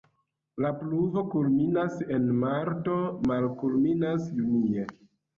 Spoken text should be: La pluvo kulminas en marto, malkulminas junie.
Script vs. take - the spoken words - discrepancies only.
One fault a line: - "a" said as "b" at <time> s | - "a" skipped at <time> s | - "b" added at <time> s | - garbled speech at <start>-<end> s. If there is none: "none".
none